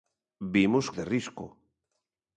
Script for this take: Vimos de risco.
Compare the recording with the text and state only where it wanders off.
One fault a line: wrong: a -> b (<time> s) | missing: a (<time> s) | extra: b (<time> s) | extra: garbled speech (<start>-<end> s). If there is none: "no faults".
no faults